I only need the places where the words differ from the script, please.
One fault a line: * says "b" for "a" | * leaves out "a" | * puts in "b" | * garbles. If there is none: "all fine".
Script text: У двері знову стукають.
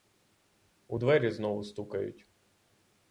all fine